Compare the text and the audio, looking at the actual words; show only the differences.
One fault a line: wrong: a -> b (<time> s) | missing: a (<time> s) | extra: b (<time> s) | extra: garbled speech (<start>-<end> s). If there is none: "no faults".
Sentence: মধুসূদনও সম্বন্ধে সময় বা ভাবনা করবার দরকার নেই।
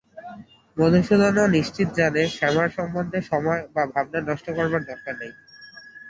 extra: নিশ্চিত জানে শ্যামার (1.6 s)
extra: নষ্ট (4.2 s)